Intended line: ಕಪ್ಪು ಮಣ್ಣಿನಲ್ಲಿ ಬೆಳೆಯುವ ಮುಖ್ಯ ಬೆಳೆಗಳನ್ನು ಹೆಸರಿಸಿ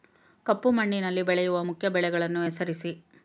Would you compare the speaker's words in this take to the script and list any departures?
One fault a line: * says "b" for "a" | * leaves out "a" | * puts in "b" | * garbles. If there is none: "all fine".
all fine